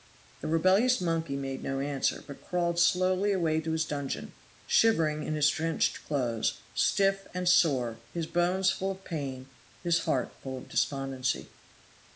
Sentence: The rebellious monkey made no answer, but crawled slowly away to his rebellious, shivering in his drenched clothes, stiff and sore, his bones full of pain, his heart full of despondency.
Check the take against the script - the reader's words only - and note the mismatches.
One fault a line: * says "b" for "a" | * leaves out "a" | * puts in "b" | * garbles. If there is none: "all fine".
* says "dungeon" for "rebellious"